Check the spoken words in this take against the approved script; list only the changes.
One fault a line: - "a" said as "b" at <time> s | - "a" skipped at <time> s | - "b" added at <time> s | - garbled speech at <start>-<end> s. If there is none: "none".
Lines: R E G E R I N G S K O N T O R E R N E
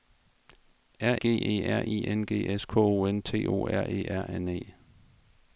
- "E" skipped at 1.1 s